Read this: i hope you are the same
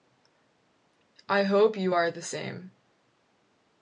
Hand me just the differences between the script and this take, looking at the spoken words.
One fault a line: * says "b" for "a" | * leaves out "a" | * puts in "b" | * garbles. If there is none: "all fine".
all fine